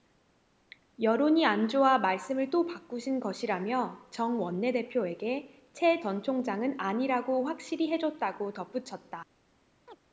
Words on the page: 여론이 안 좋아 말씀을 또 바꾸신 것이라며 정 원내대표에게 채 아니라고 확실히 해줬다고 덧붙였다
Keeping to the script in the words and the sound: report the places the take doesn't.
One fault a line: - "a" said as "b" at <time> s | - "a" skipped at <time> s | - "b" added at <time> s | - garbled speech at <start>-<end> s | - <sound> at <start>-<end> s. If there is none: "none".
- "전 총장은" added at 6.0 s
- chirp at 9.9-10.0 s